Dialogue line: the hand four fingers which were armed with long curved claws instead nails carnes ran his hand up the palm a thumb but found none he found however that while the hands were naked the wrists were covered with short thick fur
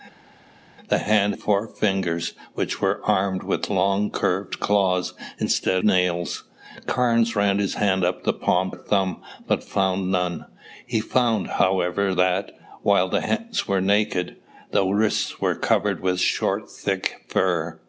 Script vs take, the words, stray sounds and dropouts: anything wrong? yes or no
no